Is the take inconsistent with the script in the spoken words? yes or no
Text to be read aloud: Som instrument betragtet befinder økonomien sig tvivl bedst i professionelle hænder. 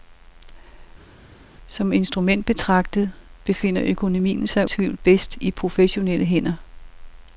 no